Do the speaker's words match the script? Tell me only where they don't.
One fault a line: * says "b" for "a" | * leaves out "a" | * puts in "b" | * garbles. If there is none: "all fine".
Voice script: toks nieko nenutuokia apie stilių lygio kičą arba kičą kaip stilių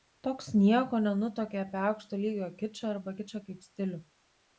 * says "aukšto" for "stilių"